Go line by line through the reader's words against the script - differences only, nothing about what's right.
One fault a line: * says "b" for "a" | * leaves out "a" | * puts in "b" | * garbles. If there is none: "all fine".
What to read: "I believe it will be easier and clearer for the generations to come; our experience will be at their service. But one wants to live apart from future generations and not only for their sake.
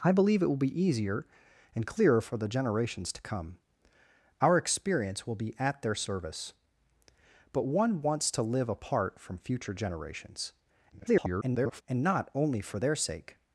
* garbles